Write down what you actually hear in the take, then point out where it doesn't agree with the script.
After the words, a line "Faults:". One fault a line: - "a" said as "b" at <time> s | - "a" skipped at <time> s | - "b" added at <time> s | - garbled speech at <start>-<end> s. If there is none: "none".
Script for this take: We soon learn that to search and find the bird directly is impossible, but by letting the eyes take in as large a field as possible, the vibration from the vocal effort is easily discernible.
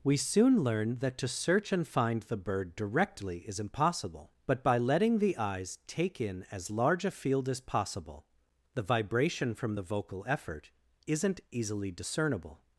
We soon learn that to search and find the bird directly is impossible, but by letting the eyes take in as large a field as possible, the vibration from the vocal effort isn't easily discernible.
Faults:
- "is" said as "isn't" at 11.1 s